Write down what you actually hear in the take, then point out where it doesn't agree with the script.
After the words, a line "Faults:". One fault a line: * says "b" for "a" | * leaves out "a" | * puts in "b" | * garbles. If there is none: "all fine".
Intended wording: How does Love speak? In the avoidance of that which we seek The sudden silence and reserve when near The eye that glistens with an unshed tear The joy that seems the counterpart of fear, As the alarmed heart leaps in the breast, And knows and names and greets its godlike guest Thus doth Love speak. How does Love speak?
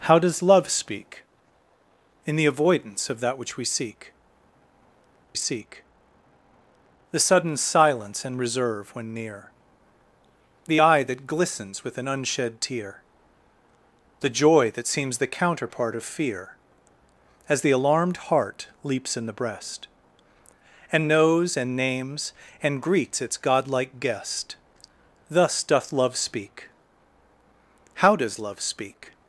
How does Love speak? In the avoidance of that which we seek seek The sudden silence and reserve when near The eye that glistens with an unshed tear The joy that seems the counterpart of fear, As the alarmed heart leaps in the breast, And knows and names and greets its godlike guest Thus doth Love speak. How does Love speak?
Faults:
* puts in "seek"